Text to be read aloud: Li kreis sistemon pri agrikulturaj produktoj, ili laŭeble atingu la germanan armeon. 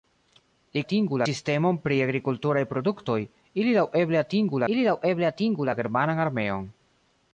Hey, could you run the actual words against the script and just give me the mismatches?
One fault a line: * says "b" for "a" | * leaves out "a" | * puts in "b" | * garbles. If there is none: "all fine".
* says "atingu" for "kreis"
* puts in "ili laŭeble atingu"